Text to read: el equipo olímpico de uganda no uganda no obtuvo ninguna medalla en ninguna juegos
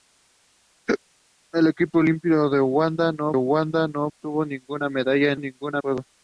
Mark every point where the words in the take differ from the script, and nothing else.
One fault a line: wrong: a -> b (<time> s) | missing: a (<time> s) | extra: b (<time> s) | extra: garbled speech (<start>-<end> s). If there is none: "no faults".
no faults